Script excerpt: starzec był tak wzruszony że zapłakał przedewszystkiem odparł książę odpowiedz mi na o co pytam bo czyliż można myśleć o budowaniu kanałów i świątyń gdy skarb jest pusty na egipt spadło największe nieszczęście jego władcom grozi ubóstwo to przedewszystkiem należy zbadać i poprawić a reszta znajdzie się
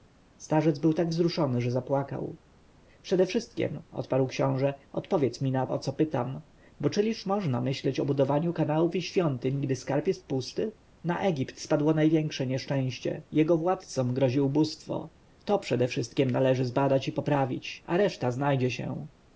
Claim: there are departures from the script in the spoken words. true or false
false